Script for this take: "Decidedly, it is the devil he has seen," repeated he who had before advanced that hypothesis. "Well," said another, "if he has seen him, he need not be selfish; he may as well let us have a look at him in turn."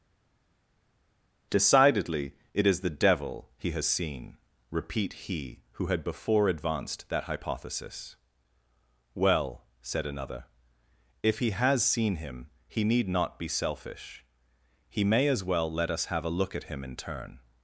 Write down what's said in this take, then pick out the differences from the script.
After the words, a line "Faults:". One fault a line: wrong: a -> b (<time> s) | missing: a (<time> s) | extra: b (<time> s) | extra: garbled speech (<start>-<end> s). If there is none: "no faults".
"Decidedly, it is the devil he has seen," repeat he who had before advanced that hypothesis. "Well," said another, "if he has seen him, he need not be selfish; he may as well let us have a look at him in turn."
Faults:
wrong: repeated -> repeat (4.7 s)